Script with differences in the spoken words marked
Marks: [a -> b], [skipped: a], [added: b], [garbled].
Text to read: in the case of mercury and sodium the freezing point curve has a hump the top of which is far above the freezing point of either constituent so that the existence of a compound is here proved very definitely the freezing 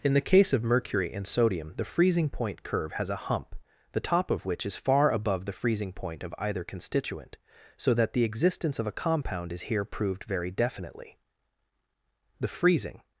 in the case of mercury and sodium the freezing point curve has a hump the top of which is far above the freezing point of either constituent so that the existence of a compound is here proved very definitely the freezing